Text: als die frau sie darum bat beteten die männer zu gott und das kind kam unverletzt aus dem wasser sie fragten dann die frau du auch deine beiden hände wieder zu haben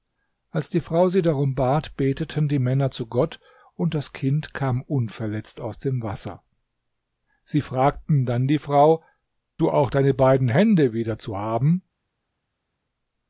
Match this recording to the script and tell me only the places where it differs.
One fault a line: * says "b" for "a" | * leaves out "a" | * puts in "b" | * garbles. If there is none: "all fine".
all fine